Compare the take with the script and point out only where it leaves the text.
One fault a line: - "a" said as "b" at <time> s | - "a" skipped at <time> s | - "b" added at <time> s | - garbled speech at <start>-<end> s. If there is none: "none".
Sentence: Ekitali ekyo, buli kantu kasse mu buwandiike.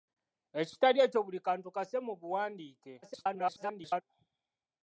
- garbled speech at 3.0-4.0 s